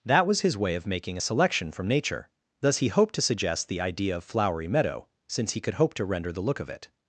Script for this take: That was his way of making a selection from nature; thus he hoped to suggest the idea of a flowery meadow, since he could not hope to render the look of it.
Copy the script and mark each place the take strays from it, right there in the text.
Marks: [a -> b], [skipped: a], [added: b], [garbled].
That was his way of making a selection from nature; thus he hoped to suggest the idea of [skipped: a] flowery meadow, since he could [skipped: not] hope to render the look of it.